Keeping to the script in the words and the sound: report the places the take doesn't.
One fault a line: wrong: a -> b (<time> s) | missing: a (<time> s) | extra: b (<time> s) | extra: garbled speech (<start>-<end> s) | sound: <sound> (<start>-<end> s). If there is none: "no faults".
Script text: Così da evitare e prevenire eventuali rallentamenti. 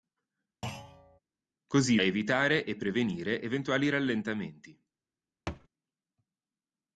sound: thud (0.6-1.2 s)
missing: da (2.0 s)
sound: thud (5.5-5.7 s)